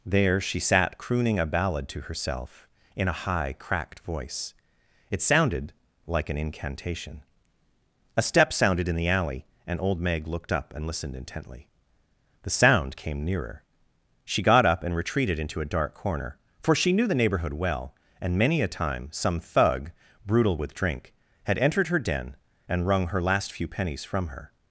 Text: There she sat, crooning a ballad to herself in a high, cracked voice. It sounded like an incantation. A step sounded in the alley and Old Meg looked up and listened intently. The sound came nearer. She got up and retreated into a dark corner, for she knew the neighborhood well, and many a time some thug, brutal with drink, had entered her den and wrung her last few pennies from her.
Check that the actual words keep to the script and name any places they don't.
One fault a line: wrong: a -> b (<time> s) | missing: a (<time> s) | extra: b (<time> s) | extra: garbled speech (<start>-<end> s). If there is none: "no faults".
no faults